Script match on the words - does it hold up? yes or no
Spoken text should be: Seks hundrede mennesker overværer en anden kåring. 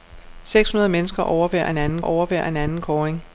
no